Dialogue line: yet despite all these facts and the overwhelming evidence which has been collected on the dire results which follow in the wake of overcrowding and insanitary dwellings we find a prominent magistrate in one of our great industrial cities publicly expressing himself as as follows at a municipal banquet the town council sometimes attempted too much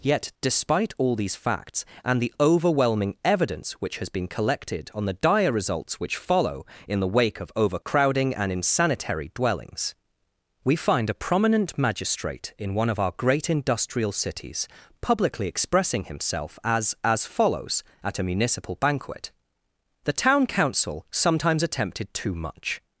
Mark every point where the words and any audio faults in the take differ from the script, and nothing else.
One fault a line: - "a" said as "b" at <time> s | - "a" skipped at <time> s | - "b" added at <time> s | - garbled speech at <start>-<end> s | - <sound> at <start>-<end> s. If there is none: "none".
- dropout at 7.8-7.9 s